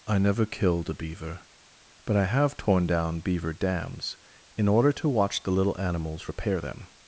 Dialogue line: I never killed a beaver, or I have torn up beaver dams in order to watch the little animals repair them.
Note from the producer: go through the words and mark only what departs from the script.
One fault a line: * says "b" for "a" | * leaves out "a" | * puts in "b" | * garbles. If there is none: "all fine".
* says "but" for "or"
* says "down" for "up"